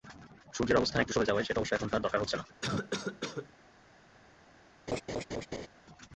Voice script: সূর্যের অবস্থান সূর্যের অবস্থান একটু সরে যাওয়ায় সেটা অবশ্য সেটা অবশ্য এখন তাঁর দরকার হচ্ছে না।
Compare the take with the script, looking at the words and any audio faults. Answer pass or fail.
fail